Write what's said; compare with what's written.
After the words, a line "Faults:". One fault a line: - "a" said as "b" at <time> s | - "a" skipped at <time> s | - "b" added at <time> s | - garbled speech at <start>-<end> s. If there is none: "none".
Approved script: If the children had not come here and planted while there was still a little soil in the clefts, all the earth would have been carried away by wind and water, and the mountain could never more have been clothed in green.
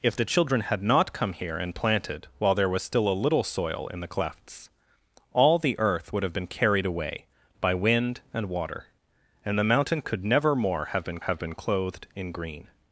If the children had not come here and planted while there was still a little soil in the clefts, all the earth would have been carried away by wind and water, and the mountain could never more have been have been clothed in green.
Faults:
- "have been" added at 11.2 s